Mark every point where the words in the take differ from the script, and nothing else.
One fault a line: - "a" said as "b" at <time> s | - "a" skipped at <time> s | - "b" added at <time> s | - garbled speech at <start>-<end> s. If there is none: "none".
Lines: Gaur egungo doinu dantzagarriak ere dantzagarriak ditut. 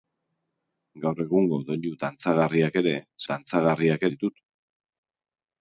none